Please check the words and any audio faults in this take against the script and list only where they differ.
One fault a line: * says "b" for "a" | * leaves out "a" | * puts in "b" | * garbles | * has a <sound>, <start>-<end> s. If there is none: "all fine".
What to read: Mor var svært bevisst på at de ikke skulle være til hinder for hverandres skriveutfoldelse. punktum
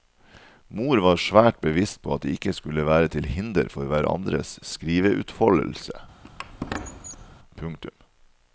* has a squeak, 6.2-7.4 s